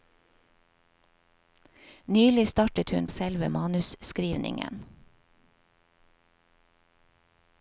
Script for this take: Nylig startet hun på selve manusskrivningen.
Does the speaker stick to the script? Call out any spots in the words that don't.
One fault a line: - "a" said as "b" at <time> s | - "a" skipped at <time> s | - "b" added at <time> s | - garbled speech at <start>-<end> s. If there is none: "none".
- "på" skipped at 3.1 s